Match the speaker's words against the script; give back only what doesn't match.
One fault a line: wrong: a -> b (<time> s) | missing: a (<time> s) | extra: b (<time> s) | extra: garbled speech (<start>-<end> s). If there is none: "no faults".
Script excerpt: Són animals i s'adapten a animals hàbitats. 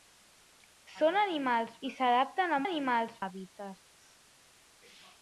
no faults